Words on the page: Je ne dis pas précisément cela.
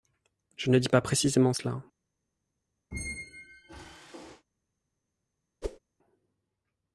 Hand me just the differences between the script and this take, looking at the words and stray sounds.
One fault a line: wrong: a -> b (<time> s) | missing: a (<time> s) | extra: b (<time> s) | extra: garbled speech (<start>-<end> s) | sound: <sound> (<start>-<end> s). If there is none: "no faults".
sound: squeak (2.9-4.4 s)
sound: whoosh (5.6-5.8 s)